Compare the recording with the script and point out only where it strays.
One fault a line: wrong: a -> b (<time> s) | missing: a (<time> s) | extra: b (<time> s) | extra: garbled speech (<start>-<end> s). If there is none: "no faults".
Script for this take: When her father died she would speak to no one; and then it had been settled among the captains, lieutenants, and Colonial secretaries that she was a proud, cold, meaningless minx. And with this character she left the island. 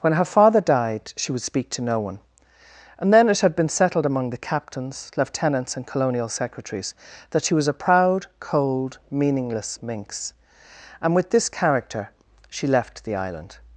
no faults